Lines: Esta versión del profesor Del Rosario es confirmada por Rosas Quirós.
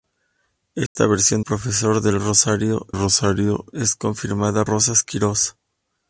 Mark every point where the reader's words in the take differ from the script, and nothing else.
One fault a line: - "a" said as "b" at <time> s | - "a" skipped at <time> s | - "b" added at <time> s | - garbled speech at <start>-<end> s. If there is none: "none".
- "del" skipped at 1.4 s
- "Rosario" added at 2.9 s
- "por" skipped at 4.6 s